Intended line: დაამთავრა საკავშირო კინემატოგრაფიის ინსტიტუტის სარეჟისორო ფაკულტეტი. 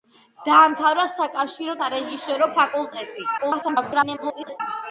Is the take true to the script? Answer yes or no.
no